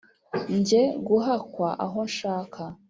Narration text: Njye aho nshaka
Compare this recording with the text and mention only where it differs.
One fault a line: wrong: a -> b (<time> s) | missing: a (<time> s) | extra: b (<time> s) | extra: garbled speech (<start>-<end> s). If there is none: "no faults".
extra: guhakwa (1.1 s)